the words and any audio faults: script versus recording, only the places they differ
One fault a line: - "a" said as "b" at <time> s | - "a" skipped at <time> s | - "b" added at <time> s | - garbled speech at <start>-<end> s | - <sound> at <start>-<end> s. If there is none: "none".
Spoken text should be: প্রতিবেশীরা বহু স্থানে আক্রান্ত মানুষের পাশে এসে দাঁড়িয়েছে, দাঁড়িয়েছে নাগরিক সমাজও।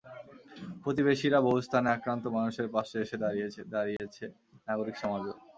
- dropout at 4.0-4.0 s